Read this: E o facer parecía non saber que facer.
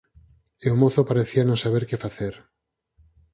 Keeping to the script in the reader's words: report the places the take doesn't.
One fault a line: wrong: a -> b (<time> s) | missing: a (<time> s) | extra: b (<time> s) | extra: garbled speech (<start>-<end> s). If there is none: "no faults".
wrong: facer -> mozo (0.8 s)